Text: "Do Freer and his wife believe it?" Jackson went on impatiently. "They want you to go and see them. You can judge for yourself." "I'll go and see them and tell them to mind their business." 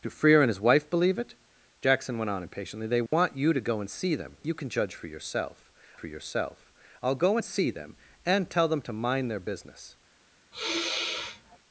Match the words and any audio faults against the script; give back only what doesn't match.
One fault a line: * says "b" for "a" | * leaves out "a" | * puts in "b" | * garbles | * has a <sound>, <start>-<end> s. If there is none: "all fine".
* has a dropout, 3.1-3.1 s
* puts in "for yourself"
* has a sigh, 10.5-11.6 s